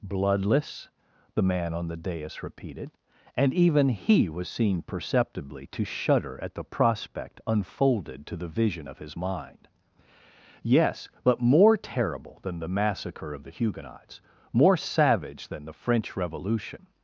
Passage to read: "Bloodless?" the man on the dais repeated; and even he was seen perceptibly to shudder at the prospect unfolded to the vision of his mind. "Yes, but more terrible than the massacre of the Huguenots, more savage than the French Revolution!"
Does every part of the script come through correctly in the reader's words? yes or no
yes